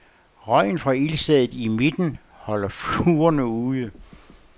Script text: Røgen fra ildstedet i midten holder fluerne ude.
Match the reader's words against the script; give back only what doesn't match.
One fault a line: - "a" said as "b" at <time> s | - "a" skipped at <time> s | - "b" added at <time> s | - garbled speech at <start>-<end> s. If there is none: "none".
none